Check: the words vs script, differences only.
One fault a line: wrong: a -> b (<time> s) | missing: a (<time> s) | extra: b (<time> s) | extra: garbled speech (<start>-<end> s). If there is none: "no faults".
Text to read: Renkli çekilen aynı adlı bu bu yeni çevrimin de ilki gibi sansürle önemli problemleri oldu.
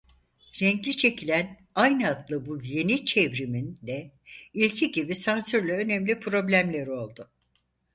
missing: bu (2.6 s)